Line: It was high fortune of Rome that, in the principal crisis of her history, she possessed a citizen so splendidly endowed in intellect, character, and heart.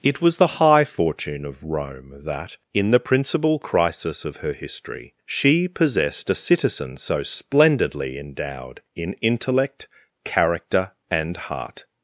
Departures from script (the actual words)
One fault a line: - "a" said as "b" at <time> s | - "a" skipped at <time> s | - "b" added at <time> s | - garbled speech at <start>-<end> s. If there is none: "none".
- "the" added at 0.4 s